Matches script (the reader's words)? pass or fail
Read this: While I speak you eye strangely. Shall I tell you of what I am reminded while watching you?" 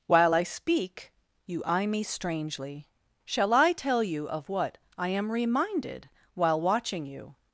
fail